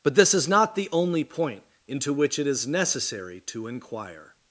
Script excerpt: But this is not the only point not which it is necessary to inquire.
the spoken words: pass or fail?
fail